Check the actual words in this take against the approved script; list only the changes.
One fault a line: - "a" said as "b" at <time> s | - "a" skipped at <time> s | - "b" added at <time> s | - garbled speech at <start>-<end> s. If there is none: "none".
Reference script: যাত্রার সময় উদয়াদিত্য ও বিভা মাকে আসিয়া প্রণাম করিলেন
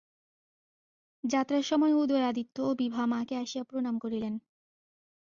none